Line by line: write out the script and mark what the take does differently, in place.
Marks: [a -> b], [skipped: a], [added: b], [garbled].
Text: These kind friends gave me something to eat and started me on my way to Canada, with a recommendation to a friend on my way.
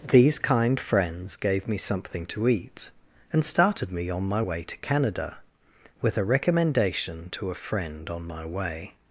These kind friends gave me something to eat and started me on my way to Canada, with a recommendation to a friend on my way.